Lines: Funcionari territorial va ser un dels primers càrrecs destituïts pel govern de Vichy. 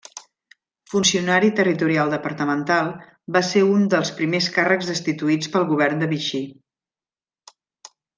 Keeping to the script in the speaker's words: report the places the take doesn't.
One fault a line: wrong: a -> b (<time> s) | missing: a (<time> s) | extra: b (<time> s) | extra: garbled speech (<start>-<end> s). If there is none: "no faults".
extra: departamental (2.1 s)